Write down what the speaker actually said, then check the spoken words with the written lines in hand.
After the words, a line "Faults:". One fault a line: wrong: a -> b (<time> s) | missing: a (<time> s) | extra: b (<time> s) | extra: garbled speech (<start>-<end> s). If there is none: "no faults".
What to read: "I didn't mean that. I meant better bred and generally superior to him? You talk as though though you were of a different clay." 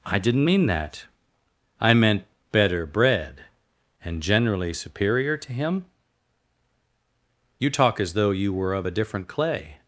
"I didn't mean that. I meant better bred and generally superior to him? You talk as though you were of a different clay."
Faults:
missing: though (8.3 s)